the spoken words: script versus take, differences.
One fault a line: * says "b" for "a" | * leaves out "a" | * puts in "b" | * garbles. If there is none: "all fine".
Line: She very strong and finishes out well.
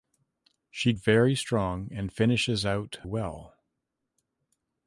all fine